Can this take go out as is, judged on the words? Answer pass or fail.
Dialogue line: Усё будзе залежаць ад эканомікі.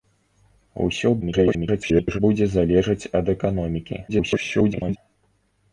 fail